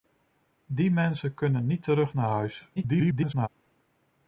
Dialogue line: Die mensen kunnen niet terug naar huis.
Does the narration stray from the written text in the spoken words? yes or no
yes